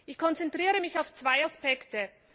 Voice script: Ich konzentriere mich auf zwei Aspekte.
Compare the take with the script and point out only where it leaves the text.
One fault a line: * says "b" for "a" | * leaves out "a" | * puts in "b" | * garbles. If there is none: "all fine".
all fine